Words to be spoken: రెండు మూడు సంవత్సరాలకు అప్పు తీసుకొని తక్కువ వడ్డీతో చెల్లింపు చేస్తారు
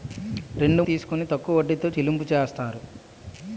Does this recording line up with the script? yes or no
no